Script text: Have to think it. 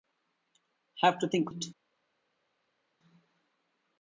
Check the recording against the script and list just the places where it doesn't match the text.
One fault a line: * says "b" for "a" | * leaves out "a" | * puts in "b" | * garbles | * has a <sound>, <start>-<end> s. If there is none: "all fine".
all fine